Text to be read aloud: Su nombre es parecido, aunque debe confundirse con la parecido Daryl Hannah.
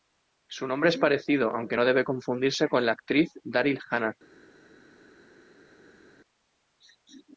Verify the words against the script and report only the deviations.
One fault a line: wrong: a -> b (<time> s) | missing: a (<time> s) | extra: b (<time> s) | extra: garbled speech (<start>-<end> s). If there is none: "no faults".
extra: no (1.7 s)
wrong: parecido -> actriz (2.9 s)